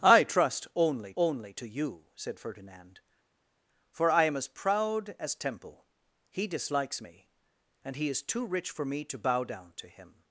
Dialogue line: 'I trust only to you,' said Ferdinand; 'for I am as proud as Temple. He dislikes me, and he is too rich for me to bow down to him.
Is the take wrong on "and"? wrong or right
right